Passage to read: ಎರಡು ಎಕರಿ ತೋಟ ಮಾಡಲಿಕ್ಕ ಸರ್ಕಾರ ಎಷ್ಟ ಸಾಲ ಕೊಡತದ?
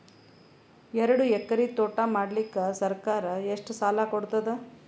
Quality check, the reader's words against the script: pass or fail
pass